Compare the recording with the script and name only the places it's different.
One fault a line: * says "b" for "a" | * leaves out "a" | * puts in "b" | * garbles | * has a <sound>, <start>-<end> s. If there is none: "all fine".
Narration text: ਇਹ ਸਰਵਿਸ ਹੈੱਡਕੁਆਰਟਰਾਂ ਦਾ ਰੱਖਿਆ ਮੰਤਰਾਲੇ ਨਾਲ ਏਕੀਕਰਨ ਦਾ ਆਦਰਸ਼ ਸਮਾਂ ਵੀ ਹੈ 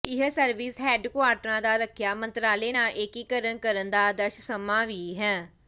* puts in "ਕਰਨ"